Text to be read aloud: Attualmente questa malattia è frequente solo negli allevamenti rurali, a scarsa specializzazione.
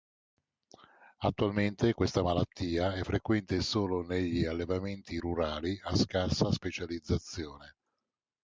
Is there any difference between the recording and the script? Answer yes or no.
no